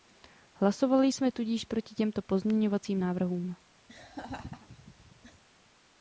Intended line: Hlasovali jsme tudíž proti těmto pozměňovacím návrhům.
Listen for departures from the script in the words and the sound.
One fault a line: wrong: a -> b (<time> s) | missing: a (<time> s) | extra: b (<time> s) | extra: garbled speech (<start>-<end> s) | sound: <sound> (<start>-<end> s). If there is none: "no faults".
sound: laugh (3.9-5.4 s)